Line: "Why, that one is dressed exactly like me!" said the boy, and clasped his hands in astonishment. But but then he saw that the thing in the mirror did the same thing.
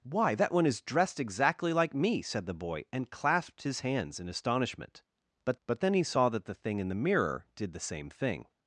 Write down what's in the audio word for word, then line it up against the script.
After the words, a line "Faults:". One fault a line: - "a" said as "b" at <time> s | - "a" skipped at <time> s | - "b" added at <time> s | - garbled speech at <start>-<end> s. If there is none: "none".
"Why, that one is dressed exactly like me!" said the boy, and clasped his hands in astonishment. But but then he saw that the thing in the mirror did the same thing.
Faults:
none